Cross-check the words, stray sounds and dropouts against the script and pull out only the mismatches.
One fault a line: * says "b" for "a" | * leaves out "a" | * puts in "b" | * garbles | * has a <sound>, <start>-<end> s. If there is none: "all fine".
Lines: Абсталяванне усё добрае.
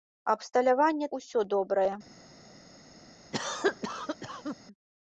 * has a cough, 3.3-4.6 s